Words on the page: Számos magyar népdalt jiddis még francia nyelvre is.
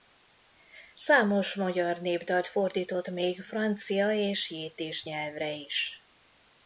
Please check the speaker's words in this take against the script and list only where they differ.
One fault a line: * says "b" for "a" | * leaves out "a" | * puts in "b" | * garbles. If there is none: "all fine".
* says "fordított" for "jiddis"
* puts in "és jiddis"